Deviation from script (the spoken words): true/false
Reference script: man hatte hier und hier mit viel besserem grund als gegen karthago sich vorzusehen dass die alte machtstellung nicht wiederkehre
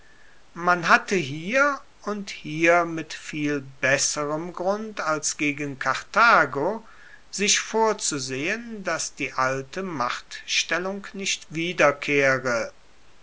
false